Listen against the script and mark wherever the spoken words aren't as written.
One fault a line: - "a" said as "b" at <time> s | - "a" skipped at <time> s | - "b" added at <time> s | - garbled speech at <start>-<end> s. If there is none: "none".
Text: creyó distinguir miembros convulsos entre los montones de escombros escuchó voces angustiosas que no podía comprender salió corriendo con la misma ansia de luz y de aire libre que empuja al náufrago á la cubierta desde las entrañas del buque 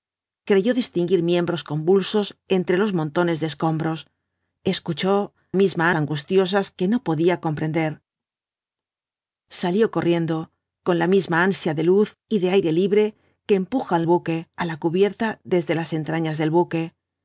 - "voces" said as "misma" at 5.5 s
- "náufrago" said as "buque" at 14.0 s